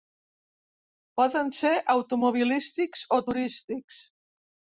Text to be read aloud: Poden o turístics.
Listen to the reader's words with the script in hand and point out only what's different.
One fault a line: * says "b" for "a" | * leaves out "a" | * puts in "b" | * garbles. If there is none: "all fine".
* puts in "ser automobilístics"